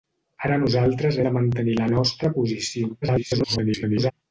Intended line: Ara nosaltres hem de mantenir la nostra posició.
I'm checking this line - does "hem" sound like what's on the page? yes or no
no